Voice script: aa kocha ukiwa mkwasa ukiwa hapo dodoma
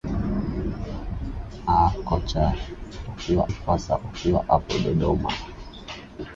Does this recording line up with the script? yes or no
yes